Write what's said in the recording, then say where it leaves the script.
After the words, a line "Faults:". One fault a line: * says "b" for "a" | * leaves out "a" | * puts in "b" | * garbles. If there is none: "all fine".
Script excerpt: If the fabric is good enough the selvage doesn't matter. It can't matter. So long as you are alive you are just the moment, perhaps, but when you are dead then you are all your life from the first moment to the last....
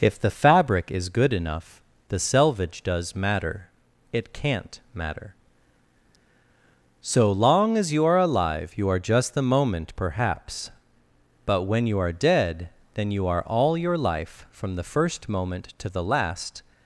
If the fabric is good enough the selvage does matter. It can't matter. So long as you are alive you are just the moment, perhaps, but when you are dead then you are all your life from the first moment to the last....
Faults:
* says "does" for "doesn't"